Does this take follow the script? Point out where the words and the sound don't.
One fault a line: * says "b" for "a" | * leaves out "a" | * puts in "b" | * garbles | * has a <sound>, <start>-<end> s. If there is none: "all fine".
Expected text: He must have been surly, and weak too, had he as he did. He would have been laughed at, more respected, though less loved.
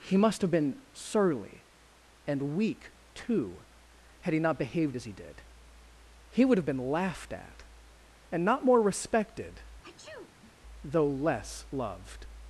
* puts in "not behaved"
* puts in "and not"
* has a sneeze, 9.8-10.5 s